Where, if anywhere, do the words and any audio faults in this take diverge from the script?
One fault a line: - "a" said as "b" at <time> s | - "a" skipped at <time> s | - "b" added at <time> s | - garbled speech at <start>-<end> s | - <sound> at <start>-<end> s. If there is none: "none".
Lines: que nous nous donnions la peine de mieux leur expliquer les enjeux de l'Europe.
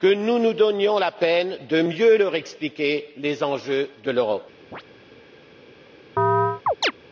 - chirp at 4.7-4.8 s
- chirp at 6.2-6.9 s